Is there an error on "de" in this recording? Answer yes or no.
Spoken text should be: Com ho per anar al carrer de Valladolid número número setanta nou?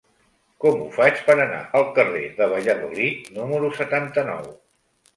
no